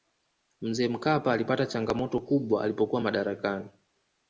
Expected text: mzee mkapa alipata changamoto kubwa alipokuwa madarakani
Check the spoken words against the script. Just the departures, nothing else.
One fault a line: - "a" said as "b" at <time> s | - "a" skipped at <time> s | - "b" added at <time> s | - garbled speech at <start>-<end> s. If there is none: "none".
none